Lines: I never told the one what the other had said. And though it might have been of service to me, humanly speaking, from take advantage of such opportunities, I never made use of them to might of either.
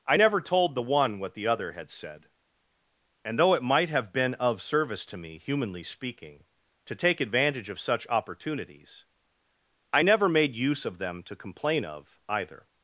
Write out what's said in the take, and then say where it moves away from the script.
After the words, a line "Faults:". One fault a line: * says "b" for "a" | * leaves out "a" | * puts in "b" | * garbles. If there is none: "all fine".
I never told the one what the other had said. And though it might have been of service to me, humanly speaking, to take advantage of such opportunities, I never made use of them to complain of either.
Faults:
* says "to" for "from"
* says "complain" for "might"